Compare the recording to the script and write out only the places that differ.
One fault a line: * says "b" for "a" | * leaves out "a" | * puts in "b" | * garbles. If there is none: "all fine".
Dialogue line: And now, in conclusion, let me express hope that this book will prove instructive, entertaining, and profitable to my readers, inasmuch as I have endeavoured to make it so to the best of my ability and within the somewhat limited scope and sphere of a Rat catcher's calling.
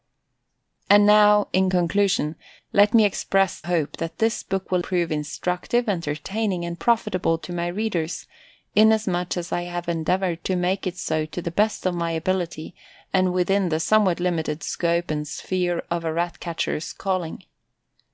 all fine